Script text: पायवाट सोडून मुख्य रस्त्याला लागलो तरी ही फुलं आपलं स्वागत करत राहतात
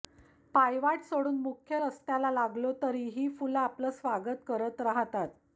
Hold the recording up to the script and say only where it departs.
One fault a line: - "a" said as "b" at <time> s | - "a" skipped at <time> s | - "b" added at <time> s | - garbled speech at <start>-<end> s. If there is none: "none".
none